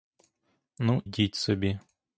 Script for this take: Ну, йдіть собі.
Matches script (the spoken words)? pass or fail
pass